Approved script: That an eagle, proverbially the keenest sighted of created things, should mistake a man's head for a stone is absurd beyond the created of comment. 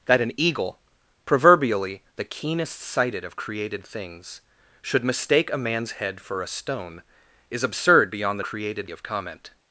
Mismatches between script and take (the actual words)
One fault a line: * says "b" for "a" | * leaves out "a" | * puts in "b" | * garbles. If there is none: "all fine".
all fine